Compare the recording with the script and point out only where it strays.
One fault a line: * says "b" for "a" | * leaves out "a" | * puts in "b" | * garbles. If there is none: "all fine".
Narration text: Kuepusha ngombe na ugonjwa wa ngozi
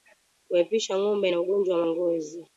all fine